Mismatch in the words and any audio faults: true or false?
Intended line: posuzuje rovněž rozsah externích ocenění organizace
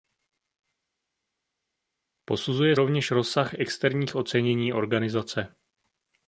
false